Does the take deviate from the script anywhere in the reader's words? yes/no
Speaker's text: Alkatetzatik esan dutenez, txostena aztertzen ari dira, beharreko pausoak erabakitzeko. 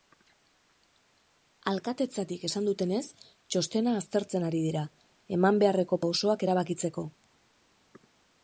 yes